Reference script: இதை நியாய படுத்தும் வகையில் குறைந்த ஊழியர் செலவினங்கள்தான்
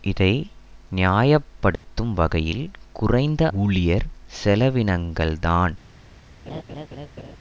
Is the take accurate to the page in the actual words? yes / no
yes